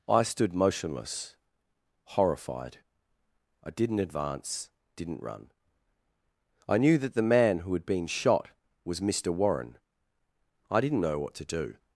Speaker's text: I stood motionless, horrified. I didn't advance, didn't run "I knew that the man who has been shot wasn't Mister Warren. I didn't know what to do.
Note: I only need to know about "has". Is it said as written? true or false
false